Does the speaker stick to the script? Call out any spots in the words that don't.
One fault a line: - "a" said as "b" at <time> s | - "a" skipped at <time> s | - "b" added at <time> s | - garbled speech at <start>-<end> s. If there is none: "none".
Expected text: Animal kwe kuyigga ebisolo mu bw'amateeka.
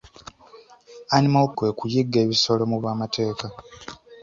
none